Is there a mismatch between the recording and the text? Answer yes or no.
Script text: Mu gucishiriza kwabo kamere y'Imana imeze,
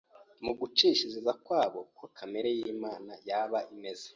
yes